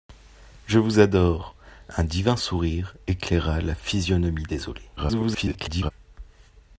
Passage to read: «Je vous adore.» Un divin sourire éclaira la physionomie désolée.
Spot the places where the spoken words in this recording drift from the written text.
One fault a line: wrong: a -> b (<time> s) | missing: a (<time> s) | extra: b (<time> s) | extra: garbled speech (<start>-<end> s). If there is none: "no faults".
extra: garbled speech (5.0-5.9 s)